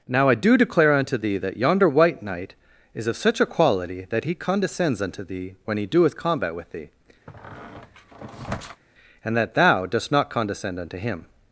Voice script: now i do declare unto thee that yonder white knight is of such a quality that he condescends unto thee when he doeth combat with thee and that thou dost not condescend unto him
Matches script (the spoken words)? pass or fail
pass